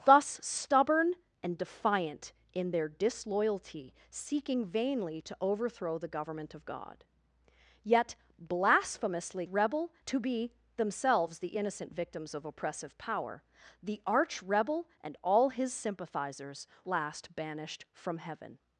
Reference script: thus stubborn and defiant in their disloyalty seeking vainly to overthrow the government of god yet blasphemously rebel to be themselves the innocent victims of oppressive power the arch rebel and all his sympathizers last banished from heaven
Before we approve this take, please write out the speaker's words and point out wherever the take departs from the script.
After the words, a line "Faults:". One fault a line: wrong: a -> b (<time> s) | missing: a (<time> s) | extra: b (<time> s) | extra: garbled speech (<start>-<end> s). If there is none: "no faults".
thus stubborn and defiant in their disloyalty seeking vainly to overthrow the government of god yet blasphemously rebel to be themselves the innocent victims of oppressive power the arch rebel and all his sympathizers last banished from heaven
Faults:
no faults